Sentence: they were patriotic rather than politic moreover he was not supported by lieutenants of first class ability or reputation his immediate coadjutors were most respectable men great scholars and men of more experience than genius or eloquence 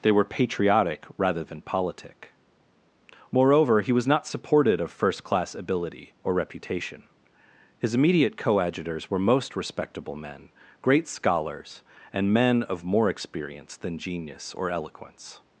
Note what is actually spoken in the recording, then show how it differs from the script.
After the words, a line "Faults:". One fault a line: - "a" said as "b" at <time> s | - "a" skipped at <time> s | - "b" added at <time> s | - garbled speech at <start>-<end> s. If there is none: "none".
they were patriotic rather than politic moreover he was not supported of first class ability or reputation his immediate coadjutors were most respectable men great scholars and men of more experience than genius or eloquence
Faults:
- "by lieutenants" skipped at 4.8 s